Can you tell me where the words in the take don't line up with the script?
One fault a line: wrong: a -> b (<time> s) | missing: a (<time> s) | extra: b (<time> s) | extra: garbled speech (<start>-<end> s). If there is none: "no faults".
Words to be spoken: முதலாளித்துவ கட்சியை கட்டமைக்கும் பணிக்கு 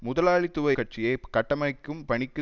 no faults